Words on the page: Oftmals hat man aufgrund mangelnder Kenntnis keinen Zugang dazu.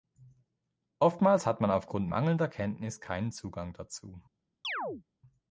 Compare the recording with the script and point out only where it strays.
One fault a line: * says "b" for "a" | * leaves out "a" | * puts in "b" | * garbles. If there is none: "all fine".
all fine